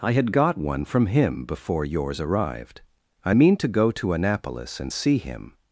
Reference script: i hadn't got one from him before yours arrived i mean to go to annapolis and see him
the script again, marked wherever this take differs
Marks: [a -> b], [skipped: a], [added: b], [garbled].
i [hadn't -> had] got one from him before yours arrived i mean to go to annapolis and see him